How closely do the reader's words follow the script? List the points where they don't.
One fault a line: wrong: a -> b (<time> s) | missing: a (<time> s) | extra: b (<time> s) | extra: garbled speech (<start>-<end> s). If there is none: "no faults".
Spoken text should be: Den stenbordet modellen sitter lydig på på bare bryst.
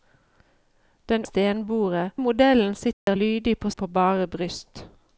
no faults